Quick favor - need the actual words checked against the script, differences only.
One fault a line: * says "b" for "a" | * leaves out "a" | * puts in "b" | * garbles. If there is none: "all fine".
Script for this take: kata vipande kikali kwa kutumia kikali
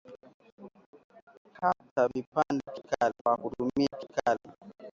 all fine